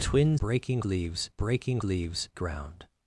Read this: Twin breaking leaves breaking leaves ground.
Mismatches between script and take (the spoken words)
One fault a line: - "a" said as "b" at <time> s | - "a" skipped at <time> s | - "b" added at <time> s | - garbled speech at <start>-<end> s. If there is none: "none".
none